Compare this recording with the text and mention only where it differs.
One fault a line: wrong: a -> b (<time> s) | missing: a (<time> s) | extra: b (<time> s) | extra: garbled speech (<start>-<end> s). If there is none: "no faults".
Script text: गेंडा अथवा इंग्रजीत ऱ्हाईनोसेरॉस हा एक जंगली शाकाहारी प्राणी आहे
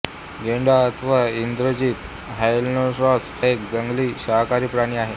missing: हा (3.3 s)